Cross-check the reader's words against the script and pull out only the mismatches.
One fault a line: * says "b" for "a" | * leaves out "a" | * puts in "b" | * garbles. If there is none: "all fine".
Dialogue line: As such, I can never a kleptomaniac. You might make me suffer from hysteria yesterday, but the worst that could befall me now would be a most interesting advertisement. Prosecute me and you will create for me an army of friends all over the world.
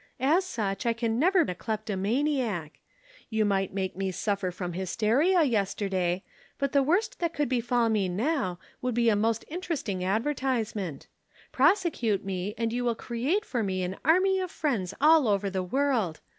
all fine